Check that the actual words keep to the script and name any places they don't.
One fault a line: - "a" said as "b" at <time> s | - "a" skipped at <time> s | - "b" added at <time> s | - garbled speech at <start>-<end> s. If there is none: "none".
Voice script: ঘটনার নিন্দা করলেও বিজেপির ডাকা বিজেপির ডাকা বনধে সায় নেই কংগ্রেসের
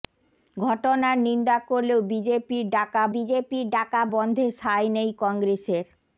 none